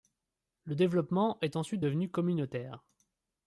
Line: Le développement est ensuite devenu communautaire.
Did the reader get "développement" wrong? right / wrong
right